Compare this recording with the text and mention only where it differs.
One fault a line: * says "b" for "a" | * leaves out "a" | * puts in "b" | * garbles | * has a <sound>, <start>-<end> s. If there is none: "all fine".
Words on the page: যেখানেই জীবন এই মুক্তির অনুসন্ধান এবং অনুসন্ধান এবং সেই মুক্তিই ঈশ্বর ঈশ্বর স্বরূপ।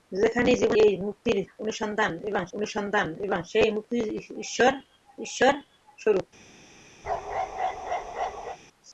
* has a bark, 7.0-8.6 s